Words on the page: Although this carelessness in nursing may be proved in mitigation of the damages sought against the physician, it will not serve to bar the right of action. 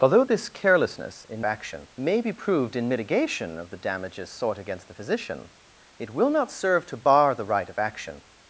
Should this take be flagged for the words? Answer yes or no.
yes